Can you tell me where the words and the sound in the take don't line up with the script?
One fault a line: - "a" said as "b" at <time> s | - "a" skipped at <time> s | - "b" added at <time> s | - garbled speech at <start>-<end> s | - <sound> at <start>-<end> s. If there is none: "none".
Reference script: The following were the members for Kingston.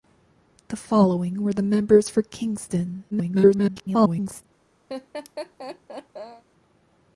- garbled speech at 3.1-4.4 s
- laugh at 4.9-6.4 s